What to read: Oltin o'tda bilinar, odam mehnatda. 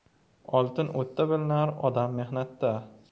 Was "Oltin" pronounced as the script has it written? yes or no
yes